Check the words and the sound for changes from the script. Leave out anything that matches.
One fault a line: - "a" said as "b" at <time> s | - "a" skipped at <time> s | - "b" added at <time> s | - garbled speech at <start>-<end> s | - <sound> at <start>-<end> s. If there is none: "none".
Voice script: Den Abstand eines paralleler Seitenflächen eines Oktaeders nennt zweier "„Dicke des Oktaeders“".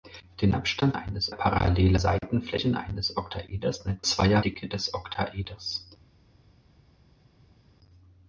none